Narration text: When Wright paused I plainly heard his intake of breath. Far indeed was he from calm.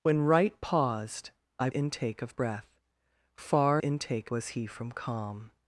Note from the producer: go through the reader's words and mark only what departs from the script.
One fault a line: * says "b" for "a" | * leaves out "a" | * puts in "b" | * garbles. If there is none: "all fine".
* leaves out "plainly heard his"
* says "intake" for "indeed"